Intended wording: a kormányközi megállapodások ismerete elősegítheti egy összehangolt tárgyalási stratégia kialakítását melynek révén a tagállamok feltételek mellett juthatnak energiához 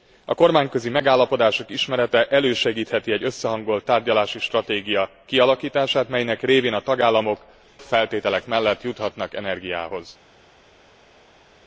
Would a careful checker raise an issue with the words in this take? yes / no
no